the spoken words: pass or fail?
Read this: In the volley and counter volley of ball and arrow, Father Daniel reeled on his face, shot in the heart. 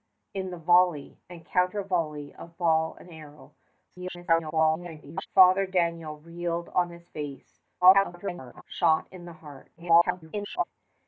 fail